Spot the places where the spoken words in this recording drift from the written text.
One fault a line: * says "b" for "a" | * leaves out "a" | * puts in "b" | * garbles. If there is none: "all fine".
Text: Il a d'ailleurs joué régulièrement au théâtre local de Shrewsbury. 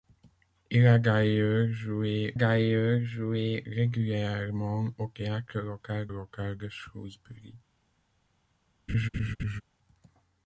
* puts in "d'ailleurs joué"
* puts in "local"